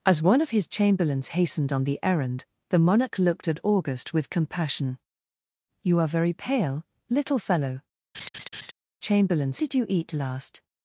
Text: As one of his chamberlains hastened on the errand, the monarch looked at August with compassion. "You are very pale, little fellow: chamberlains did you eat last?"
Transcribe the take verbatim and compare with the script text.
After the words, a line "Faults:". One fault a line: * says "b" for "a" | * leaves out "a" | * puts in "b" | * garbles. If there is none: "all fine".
As one of his chamberlains hastened on the errand, the monarch looked at August with compassion. "You are very pale, little fellow: chamberlains did you eat last?"
Faults:
all fine